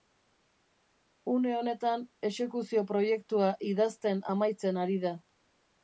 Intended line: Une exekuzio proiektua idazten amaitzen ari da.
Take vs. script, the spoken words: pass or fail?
fail